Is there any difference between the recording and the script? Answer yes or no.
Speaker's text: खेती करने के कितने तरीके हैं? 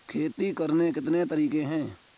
yes